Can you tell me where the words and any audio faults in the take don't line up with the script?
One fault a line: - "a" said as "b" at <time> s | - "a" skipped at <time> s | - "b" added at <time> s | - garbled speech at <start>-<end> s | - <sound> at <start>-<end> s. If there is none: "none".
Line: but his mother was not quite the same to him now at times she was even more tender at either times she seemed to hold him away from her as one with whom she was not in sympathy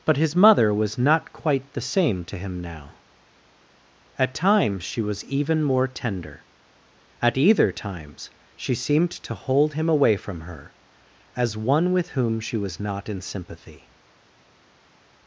none